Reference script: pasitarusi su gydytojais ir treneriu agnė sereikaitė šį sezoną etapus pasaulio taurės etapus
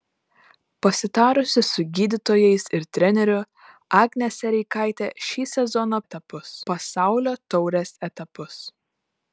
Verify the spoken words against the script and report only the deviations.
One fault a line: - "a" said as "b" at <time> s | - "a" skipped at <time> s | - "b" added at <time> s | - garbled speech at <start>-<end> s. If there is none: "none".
none